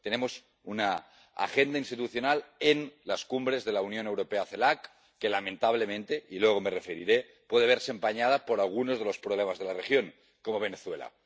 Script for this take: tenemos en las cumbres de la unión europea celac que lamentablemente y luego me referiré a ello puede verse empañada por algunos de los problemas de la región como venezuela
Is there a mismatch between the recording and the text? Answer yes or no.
yes